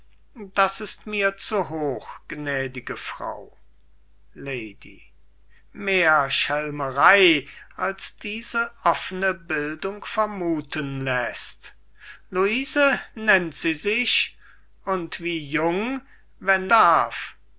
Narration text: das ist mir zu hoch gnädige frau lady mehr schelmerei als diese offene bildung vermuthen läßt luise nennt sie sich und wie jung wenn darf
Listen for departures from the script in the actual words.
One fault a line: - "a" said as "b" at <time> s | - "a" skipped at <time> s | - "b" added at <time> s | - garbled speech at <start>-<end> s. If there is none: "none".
none